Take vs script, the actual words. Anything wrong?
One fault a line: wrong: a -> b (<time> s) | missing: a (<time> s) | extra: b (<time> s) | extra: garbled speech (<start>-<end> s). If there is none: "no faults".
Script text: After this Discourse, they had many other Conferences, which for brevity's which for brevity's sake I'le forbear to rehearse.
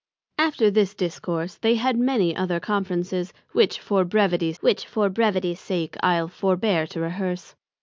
no faults